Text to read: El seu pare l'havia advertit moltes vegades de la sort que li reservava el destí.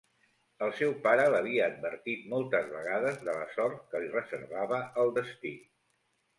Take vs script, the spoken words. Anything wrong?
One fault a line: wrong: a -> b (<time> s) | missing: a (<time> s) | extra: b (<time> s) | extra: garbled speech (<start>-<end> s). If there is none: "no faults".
no faults